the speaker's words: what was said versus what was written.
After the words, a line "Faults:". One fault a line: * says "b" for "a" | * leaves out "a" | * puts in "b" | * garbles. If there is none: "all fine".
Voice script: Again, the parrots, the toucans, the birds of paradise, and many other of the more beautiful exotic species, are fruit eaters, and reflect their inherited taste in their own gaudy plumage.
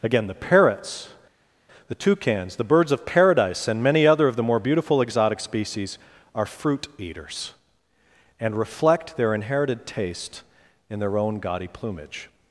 Again, the parrots, the toucans, the birds of paradise, and many other of the more beautiful exotic species, are fruit eaters, and reflect their inherited taste in their own gaudy plumage.
Faults:
all fine